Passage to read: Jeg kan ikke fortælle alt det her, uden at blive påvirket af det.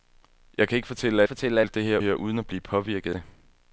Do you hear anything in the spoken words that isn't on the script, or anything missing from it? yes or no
yes